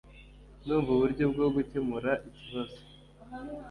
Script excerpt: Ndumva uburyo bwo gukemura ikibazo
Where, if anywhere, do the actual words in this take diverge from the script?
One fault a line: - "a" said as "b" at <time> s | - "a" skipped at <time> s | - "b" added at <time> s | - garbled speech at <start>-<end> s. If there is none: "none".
none